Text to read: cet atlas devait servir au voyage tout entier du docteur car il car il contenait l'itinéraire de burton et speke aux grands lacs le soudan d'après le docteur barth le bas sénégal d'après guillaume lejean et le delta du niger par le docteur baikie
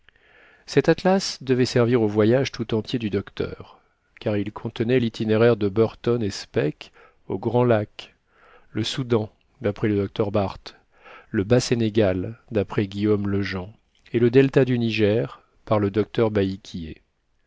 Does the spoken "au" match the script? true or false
true